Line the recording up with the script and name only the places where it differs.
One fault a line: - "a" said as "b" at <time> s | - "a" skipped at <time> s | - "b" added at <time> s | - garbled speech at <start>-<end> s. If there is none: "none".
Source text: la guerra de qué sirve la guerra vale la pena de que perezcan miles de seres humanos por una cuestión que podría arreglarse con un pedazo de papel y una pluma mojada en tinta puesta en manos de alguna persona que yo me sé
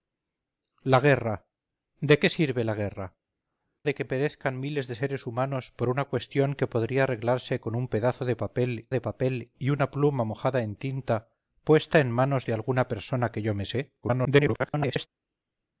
- "vale la pena" skipped at 3.2 s
- "de papel" added at 8.9 s
- garbled speech at 14.0-15.1 s